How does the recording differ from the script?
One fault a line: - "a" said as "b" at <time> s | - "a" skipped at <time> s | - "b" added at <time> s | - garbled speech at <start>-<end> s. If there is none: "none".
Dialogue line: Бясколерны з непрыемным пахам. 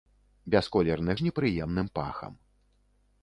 none